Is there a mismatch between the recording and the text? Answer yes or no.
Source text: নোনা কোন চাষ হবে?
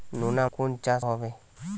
no